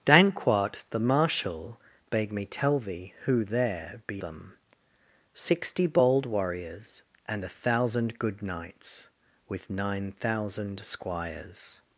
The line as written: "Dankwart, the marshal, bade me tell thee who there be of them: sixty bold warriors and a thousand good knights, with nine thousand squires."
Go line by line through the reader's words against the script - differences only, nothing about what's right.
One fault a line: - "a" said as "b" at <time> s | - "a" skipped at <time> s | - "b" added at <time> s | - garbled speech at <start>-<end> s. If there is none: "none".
- "of" skipped at 4.2 s